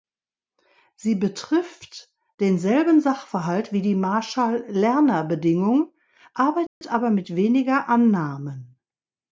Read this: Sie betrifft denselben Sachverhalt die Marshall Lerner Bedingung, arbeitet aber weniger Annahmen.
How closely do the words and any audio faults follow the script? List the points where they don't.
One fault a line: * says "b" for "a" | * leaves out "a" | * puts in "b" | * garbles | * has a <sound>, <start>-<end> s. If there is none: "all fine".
* puts in "wie"
* has a dropout, 6.7-6.8 s
* puts in "mit"